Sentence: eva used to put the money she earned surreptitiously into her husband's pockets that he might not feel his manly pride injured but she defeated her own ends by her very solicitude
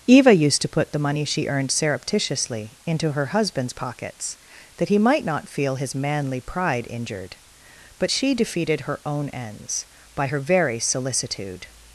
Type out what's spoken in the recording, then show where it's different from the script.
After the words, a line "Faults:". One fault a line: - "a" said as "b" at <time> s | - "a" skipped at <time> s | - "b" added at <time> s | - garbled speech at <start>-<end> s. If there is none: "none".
eva used to put the money she earned surreptitiously into her husband's pockets that he might not feel his manly pride injured but she defeated her own ends by her very solicitude
Faults:
none